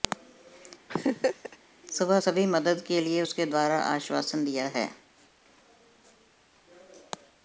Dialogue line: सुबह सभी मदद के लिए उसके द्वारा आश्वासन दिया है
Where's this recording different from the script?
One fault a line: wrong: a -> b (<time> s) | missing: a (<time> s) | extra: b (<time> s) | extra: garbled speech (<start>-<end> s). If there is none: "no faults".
no faults